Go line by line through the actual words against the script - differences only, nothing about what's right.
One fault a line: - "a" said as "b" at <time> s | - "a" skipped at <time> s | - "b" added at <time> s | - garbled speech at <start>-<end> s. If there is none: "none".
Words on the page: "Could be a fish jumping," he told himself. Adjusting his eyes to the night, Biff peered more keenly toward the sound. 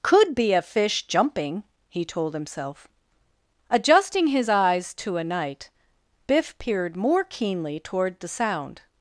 - "the" said as "a" at 5.2 s